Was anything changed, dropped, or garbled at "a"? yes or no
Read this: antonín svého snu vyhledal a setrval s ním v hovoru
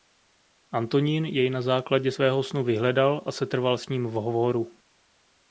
no